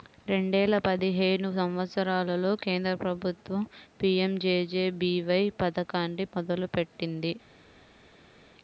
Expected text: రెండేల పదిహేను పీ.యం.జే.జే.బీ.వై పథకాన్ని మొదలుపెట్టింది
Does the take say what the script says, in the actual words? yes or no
no